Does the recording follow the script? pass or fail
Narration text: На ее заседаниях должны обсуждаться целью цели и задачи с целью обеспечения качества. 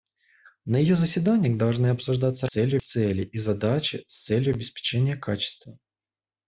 pass